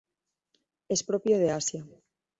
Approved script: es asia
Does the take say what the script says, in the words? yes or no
no